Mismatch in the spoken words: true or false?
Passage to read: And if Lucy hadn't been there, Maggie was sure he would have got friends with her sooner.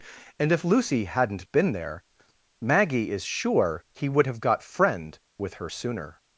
true